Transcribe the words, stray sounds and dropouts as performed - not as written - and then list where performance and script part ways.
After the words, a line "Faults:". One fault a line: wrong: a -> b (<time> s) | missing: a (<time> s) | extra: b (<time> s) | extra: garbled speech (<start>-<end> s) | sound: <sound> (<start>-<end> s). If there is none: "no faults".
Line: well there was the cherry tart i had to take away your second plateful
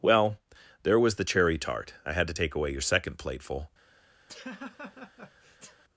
well there was the cherry tart i had to take away your second plateful
Faults:
sound: laugh (4.3-5.8 s)